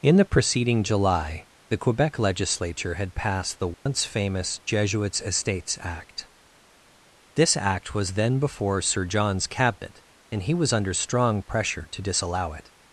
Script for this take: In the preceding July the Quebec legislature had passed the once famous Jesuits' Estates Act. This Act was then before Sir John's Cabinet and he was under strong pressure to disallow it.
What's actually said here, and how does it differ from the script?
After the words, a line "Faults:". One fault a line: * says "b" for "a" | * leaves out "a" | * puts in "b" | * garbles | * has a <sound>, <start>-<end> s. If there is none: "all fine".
In the preceding July the Quebec legislature had passed the once famous Jesuits' Estates Act. This Act was then before Sir John's Cabinet and he was under strong pressure to disallow it.
Faults:
* has a dropout, 3.7-3.9 s